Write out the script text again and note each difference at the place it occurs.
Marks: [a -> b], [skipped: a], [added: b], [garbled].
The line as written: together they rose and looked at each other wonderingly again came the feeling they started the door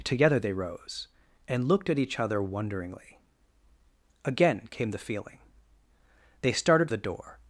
together they rose and looked at each other wonderingly again came the feeling they started the door